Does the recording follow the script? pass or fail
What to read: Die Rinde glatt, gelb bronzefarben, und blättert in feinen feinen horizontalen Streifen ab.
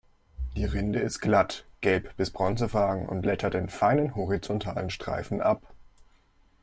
fail